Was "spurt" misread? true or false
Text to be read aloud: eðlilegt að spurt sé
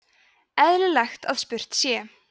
false